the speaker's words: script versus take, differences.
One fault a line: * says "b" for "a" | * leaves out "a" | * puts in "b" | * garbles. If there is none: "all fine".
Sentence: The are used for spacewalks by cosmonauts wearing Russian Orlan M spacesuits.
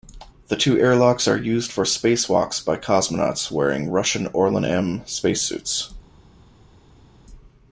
* puts in "two airlocks"